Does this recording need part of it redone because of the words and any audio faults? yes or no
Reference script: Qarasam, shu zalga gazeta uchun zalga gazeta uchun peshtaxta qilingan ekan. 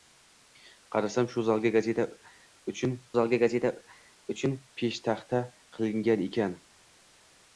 no